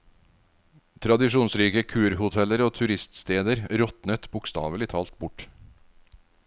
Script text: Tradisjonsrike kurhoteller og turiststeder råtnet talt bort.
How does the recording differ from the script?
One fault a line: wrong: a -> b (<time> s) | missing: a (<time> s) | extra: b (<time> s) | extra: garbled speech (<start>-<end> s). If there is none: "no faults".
extra: bokstavelig (4.3 s)